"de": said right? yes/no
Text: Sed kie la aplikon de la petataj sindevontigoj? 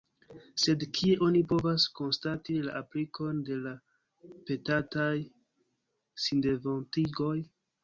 yes